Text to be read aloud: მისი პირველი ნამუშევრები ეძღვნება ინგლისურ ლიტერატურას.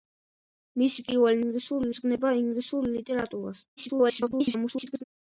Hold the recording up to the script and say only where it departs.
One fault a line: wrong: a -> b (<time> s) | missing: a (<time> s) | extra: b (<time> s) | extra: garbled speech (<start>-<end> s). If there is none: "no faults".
wrong: ნამუშევრები -> ინგლისურ (1.4 s)
extra: garbled speech (3.8-5.0 s)